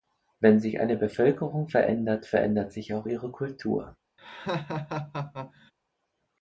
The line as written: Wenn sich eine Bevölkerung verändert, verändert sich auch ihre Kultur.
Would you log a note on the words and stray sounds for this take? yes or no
yes